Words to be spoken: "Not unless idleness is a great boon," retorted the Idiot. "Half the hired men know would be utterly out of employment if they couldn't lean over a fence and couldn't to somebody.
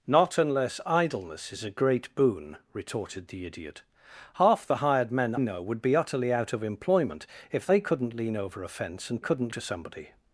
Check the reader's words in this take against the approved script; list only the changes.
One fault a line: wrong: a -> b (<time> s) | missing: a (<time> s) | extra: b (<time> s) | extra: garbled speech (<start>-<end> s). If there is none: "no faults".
no faults